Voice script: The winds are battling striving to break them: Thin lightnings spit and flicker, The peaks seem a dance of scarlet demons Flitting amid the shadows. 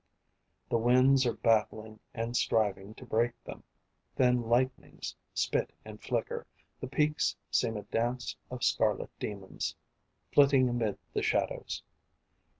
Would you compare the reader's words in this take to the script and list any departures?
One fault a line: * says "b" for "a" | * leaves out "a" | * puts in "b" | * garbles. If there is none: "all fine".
* puts in "and"